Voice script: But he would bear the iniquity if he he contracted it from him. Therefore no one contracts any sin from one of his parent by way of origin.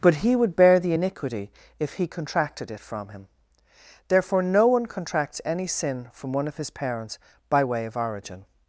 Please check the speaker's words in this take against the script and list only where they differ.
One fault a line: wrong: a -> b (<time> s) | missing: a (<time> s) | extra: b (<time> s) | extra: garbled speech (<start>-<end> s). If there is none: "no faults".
missing: he (2.1 s)
wrong: parent -> parents (6.7 s)